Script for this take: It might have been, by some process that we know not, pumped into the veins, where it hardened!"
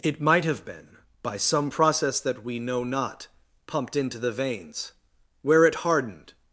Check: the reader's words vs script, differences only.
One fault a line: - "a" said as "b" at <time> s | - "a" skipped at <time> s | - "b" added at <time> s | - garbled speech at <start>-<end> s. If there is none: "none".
none